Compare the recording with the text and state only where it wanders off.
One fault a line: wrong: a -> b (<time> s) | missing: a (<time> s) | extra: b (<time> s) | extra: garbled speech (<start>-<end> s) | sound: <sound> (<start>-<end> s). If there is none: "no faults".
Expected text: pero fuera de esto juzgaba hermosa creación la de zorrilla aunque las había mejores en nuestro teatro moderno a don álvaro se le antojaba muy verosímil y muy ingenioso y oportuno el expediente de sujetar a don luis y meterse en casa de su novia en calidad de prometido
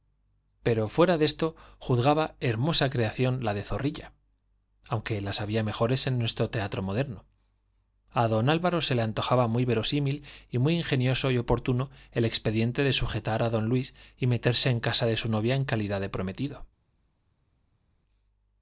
no faults